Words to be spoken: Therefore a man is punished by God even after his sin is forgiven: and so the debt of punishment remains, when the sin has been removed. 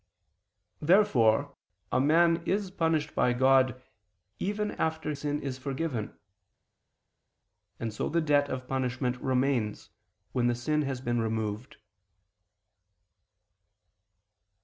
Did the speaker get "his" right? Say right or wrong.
wrong